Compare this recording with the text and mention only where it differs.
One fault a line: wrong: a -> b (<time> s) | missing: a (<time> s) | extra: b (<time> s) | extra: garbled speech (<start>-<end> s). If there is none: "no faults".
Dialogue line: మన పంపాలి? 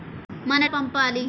no faults